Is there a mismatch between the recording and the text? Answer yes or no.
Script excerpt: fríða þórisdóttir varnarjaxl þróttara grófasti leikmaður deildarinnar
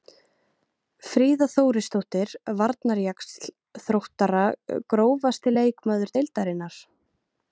no